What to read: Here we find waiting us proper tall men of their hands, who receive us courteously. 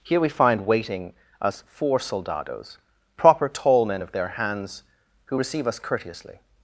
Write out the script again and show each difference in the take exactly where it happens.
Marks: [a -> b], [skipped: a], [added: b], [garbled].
Here we find waiting us [added: four soldados] proper tall men of their hands, who receive us courteously.